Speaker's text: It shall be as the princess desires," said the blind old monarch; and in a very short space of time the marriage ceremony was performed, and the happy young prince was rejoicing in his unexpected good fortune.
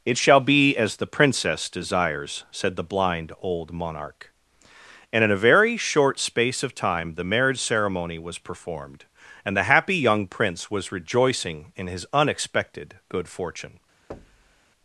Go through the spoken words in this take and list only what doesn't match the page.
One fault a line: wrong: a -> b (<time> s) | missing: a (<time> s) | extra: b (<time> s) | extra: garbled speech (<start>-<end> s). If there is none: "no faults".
no faults